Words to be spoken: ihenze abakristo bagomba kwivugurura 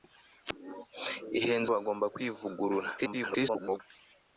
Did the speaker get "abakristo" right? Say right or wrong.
wrong